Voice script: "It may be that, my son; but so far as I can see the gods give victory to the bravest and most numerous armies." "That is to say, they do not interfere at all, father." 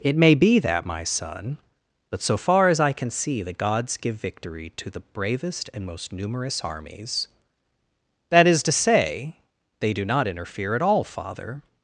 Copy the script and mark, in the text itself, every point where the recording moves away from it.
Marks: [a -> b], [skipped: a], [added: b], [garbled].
"It may be that, my son; but so far as I can see the gods give victory to the bravest and most numerous armies." "That is to say, they do not interfere at all, father."